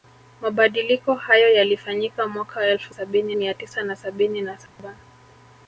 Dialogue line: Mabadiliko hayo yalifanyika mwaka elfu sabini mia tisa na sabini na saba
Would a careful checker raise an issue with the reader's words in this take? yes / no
no